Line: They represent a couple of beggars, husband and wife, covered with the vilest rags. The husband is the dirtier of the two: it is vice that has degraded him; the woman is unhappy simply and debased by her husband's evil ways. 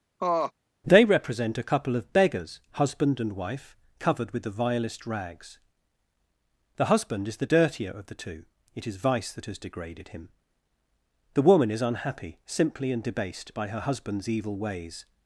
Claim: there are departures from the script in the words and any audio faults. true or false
true